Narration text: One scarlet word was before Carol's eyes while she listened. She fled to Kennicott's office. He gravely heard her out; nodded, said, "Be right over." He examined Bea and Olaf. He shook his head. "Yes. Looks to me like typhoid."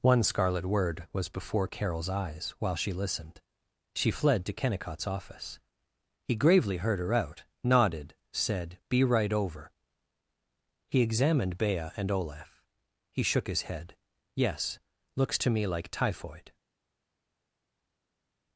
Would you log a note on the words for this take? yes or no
no